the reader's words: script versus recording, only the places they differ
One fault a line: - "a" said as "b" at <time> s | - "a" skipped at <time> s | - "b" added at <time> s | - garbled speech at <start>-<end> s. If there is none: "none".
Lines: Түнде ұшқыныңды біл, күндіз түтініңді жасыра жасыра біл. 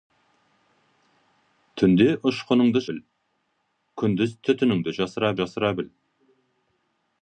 none